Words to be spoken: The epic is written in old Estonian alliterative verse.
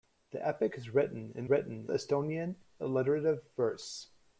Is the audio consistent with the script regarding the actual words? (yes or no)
no